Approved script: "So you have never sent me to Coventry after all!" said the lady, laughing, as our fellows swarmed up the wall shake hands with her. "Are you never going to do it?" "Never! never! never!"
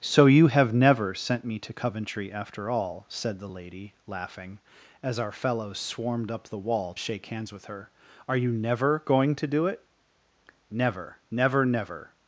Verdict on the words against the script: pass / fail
pass